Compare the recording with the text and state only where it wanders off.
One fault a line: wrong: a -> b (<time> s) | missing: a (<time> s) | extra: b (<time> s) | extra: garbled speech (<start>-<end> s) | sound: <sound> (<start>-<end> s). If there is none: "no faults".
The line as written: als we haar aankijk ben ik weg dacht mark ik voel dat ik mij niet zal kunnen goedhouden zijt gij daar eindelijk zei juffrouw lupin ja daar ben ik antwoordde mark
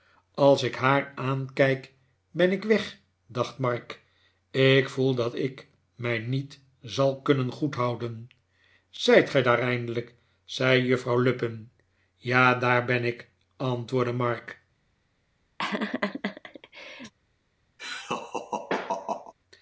wrong: we -> ik (0.6 s)
sound: laugh (15.6-17.1 s)
sound: laugh (17.8-19.3 s)